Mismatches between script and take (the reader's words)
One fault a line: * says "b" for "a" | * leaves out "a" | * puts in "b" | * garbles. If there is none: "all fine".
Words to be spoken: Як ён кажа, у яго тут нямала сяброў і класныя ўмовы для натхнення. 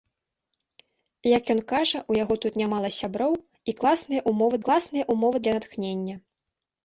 * puts in "класныя ўмовы"